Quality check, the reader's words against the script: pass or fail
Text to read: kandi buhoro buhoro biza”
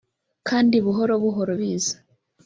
pass